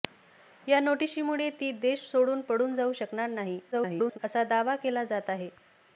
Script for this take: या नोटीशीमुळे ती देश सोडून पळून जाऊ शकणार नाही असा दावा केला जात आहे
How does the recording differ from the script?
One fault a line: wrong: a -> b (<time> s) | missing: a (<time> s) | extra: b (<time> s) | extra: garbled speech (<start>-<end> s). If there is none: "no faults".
extra: garbled speech (3.7-4.2 s)